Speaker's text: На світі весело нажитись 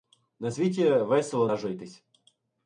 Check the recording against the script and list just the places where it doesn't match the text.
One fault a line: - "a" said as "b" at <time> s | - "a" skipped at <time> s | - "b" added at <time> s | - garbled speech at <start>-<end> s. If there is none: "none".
none